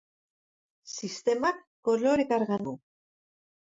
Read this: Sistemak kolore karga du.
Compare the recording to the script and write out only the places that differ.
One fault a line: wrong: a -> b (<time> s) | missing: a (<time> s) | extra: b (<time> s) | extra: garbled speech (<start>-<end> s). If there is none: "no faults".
no faults